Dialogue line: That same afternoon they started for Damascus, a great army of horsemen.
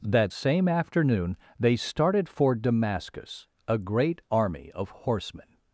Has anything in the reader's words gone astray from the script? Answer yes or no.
no